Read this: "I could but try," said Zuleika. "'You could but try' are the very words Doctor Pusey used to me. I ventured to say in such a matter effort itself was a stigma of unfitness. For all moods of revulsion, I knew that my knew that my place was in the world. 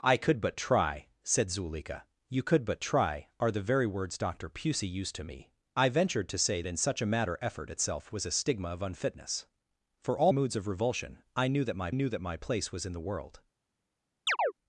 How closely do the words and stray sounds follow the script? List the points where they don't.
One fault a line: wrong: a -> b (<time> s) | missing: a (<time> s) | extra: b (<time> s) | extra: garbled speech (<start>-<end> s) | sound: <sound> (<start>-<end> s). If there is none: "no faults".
sound: chirp (14.3-14.5 s)